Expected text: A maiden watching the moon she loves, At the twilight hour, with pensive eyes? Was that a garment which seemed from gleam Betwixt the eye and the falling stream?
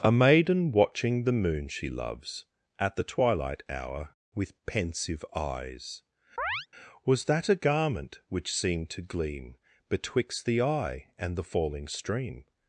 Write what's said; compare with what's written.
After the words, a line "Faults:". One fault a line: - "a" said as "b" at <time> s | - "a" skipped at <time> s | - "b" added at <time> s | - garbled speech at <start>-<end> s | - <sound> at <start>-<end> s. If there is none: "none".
A maiden watching the moon she loves, At the twilight hour, with pensive eyes? Was that a garment which seemed to gleam Betwixt the eye and the falling stream?
Faults:
- chirp at 6.4-6.7 s
- "from" said as "to" at 8.9 s